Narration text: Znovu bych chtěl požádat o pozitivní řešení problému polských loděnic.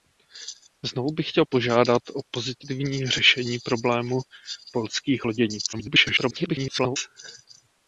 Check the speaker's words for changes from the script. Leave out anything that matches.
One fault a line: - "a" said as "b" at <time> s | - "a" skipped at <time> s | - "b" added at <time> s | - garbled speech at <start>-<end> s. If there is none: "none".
- garbled speech at 5.7-7.0 s